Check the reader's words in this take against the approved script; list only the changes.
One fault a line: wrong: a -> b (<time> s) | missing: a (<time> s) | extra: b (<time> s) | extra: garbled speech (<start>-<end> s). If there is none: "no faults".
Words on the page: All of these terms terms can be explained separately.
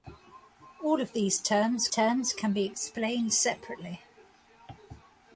no faults